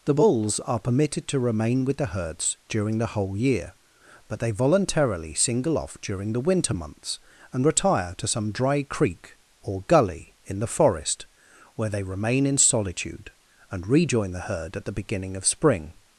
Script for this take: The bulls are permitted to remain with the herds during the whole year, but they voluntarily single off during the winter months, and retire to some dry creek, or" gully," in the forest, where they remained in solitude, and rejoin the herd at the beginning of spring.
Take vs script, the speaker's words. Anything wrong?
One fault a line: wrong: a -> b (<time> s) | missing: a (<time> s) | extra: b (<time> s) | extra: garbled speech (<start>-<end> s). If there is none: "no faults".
wrong: remained -> remain (12.0 s)